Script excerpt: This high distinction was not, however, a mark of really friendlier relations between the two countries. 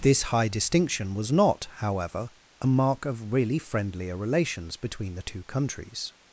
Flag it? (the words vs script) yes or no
no